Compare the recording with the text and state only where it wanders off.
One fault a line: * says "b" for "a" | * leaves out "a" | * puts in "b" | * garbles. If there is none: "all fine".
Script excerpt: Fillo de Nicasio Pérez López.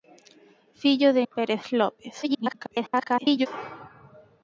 * leaves out "Nicasio"
* garbles